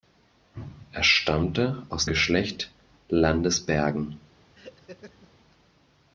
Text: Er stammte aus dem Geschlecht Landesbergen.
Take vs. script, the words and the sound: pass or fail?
fail